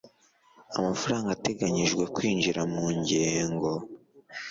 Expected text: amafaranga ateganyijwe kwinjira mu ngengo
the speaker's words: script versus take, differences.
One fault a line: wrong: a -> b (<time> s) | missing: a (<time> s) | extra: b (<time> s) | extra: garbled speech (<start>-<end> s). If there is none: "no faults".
no faults